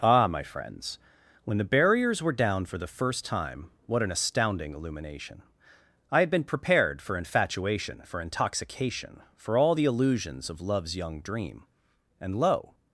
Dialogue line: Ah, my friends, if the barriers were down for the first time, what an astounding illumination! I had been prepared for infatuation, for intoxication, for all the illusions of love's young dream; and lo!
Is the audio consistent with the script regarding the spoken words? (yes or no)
no